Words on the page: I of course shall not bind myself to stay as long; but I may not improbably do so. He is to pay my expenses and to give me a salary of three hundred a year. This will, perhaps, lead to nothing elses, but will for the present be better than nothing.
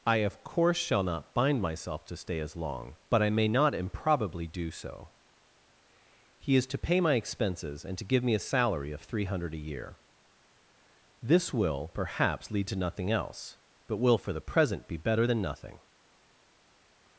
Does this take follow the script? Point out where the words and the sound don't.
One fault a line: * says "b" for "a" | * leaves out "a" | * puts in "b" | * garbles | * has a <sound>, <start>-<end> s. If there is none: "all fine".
* says "else" for "elses"